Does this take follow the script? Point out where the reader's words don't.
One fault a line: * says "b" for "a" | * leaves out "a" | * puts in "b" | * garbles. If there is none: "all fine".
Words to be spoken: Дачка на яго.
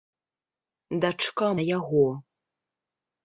all fine